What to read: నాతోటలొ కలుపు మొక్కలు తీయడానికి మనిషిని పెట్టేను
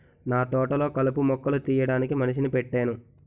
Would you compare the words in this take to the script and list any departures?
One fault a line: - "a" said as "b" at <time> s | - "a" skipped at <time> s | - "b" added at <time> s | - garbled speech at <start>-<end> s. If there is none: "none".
none